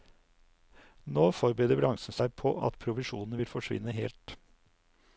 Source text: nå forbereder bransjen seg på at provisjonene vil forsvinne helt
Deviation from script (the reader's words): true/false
false